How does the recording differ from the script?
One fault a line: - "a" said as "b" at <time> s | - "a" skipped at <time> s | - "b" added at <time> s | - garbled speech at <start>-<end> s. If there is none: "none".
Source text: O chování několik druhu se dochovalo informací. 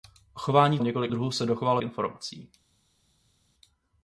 none